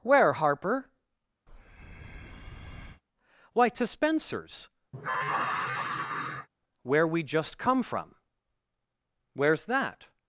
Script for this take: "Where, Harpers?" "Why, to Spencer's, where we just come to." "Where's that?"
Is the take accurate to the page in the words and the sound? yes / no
no